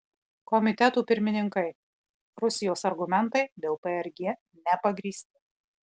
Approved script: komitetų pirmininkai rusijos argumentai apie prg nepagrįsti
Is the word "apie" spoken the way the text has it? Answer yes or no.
no